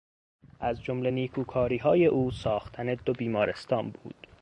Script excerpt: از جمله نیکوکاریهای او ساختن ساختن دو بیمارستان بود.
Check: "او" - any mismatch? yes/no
no